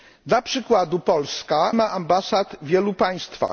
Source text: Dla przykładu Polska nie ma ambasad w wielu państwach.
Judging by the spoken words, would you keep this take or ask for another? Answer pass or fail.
fail